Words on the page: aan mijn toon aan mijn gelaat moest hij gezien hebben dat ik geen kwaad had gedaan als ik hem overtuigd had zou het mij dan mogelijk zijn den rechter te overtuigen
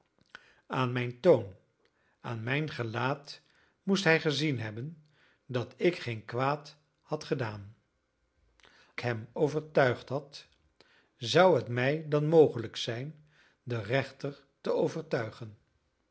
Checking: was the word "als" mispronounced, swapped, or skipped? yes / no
yes